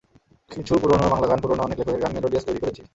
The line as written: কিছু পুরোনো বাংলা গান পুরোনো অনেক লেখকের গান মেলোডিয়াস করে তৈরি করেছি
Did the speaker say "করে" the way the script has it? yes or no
no